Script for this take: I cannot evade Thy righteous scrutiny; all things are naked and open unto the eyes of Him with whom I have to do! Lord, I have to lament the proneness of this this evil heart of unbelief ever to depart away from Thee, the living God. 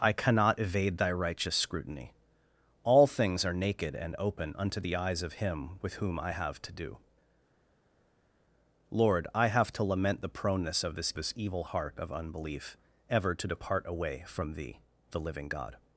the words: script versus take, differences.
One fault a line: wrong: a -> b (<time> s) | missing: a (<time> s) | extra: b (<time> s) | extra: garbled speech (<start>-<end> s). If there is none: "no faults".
no faults